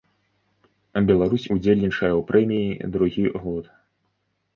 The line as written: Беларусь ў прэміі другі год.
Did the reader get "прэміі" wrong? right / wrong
right